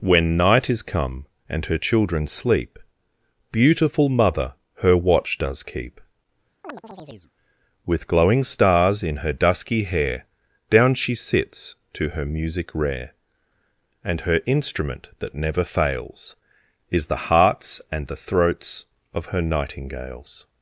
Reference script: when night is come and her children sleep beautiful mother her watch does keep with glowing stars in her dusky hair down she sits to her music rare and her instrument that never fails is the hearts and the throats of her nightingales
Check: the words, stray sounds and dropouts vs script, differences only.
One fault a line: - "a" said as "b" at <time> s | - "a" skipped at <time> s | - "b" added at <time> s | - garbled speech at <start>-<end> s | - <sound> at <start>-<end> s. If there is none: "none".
- chirp at 6.6-7.3 s